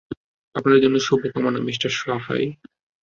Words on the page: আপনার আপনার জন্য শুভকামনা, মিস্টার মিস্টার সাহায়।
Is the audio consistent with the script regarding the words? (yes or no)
no